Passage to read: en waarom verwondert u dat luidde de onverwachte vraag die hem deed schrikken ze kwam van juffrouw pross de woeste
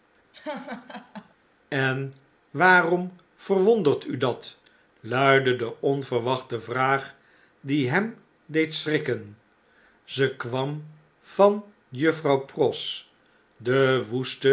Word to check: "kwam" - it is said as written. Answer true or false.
true